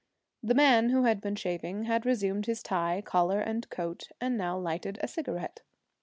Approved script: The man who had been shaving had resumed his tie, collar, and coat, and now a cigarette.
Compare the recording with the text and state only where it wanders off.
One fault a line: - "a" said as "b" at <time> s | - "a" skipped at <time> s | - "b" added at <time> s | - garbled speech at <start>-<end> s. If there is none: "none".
- "lighted" added at 4.6 s